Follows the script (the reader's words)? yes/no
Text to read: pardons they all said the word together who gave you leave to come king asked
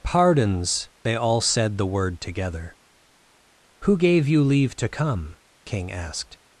yes